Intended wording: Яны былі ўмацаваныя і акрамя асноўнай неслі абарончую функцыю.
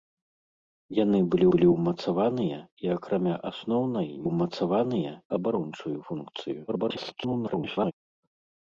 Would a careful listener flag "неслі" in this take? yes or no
yes